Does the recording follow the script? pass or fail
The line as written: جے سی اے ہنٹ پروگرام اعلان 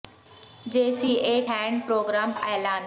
pass